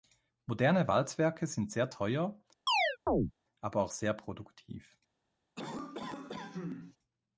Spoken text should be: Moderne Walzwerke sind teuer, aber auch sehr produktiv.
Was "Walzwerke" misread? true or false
false